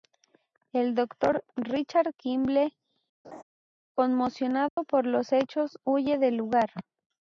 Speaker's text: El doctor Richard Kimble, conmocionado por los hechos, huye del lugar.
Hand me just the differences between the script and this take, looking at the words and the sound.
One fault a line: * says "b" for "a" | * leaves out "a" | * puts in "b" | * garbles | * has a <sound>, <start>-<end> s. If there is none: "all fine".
* has a laugh, 3.2-3.4 s
* has a dropout, 4.7-4.8 s